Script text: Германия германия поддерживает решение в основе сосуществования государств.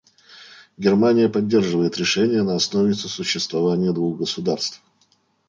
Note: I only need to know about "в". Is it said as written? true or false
false